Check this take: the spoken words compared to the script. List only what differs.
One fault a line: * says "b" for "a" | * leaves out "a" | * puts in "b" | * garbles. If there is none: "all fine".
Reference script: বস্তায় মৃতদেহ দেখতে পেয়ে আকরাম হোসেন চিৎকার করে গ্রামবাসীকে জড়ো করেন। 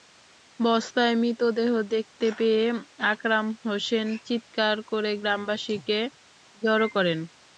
all fine